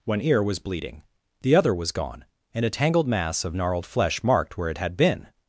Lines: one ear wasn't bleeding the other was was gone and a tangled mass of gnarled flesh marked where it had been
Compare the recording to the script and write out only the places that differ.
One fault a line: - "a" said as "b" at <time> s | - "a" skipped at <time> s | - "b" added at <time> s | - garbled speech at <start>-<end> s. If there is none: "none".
- "wasn't" said as "was" at 0.4 s
- "was" skipped at 1.9 s